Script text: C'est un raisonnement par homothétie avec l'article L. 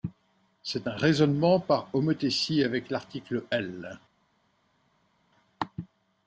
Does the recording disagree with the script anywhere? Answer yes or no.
no